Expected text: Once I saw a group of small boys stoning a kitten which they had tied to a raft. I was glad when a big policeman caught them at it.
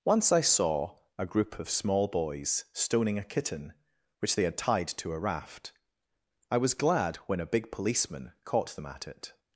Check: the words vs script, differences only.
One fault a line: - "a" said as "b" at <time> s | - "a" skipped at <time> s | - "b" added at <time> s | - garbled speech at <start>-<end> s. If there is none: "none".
none